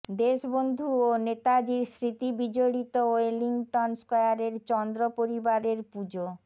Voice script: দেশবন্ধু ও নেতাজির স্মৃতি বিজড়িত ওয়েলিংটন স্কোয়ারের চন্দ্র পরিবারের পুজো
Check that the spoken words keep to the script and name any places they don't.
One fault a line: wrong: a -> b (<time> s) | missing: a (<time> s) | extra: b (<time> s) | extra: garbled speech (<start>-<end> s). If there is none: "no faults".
no faults